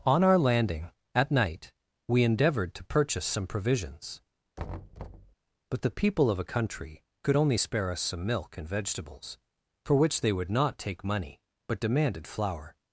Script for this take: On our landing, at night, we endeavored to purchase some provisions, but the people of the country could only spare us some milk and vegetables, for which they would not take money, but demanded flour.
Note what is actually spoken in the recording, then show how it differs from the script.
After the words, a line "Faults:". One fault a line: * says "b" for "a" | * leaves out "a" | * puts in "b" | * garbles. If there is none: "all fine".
On our landing, at night, we endeavored to purchase some provisions, but the people of a country could only spare us some milk and vegetables, for which they would not take money, but demanded flour.
Faults:
* says "a" for "the"